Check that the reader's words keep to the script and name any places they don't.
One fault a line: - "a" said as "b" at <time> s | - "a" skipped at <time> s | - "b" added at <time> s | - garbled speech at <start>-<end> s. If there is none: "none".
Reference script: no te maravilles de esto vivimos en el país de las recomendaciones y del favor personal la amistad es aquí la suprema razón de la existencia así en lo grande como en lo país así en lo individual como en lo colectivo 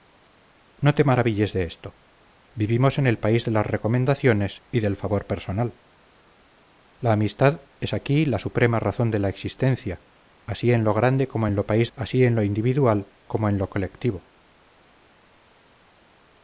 none